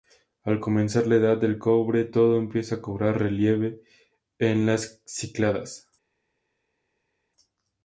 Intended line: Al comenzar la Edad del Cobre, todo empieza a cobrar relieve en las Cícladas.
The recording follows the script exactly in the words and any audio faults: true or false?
true